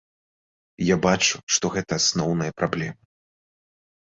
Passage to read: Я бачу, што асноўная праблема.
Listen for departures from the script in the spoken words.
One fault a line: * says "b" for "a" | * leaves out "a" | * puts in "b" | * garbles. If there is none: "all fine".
* puts in "гэта"